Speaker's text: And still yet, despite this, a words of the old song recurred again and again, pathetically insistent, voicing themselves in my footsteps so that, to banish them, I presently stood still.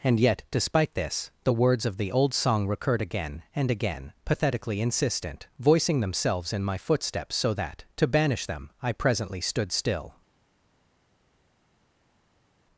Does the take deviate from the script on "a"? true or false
true